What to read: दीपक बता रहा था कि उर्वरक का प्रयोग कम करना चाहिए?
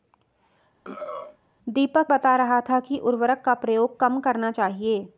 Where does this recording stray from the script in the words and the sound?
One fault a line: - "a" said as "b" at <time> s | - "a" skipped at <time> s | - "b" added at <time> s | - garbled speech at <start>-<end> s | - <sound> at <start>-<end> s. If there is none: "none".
- throat clearing at 0.8-1.4 s